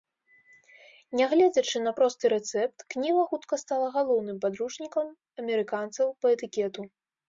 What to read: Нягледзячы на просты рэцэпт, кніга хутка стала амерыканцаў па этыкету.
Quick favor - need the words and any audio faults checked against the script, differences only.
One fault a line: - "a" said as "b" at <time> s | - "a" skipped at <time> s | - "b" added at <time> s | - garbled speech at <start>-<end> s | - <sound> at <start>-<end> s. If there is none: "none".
- "галоўным падручнікам" added at 4.0 s